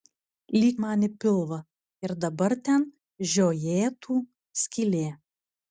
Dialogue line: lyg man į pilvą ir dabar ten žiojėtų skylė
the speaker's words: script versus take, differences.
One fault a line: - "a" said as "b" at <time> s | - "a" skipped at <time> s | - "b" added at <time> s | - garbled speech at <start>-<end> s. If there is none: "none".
none